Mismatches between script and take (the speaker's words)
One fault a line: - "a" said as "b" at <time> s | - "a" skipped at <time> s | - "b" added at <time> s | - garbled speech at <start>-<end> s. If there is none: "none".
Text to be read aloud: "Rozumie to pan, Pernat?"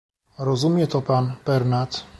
none